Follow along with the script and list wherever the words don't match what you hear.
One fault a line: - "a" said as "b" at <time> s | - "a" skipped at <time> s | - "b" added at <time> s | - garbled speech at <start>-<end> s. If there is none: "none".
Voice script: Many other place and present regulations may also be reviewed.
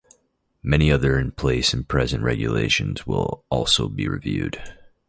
- "in" added at 1.2 s
- "may" said as "will" at 3.0 s